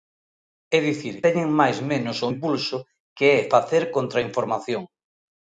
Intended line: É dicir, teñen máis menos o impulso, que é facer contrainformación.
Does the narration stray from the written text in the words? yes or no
no